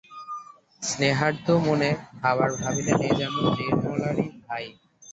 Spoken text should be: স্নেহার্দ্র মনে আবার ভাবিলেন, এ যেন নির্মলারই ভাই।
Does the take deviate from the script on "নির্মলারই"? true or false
false